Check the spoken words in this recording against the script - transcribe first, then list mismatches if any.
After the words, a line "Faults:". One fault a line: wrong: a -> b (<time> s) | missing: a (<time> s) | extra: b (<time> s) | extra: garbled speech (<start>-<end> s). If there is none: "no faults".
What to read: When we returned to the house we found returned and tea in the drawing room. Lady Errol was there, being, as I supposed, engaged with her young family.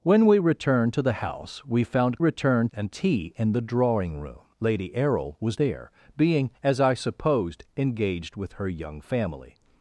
When we returned to the house we found returned and tea in the drawing room. Lady Errol was there, being, as I supposed, engaged with her young family.
Faults:
no faults